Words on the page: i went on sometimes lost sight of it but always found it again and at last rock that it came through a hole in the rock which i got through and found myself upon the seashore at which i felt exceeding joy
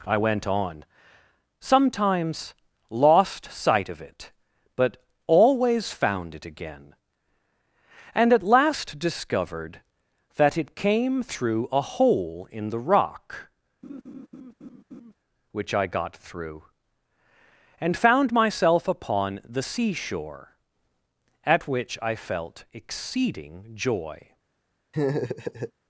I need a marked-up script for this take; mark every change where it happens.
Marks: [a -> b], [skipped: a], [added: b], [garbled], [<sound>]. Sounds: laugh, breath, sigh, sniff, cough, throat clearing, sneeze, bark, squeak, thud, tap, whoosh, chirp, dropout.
i went on sometimes lost sight of it but always found it again and at last [rock -> discovered] that it came through a hole in the rock [laugh] which i got through and found myself upon the seashore at which i felt exceeding joy [laugh]